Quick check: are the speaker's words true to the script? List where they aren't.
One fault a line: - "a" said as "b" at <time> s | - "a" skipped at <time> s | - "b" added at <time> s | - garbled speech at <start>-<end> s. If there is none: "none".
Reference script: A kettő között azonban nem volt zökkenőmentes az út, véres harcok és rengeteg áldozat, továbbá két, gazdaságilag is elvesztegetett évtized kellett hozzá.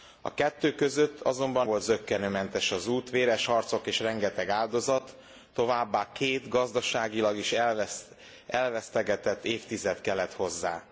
- "nem" skipped at 1.7 s